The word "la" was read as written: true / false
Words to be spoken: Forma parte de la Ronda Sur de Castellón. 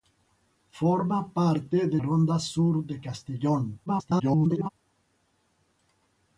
false